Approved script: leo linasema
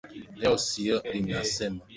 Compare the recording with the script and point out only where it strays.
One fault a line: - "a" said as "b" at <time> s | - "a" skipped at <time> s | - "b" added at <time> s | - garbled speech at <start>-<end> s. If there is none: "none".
none